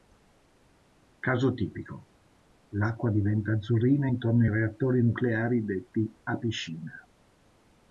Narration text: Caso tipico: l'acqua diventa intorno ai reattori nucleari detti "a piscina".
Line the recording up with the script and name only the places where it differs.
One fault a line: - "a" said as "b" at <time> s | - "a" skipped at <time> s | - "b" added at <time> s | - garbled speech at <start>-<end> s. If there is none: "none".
- "azzurrina" added at 3.5 s